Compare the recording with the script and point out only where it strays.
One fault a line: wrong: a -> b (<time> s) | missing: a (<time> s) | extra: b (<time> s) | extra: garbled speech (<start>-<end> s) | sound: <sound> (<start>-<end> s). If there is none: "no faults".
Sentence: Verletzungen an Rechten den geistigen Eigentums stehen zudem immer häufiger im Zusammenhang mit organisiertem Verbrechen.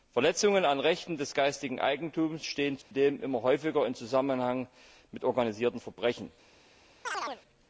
wrong: den -> des (1.2 s)
sound: dropout (2.8-2.9 s)
sound: chirp (7.0-7.4 s)